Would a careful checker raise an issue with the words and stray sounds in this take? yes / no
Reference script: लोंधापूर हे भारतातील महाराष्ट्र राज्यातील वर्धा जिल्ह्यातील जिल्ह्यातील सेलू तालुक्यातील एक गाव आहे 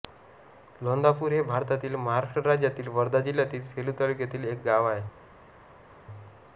yes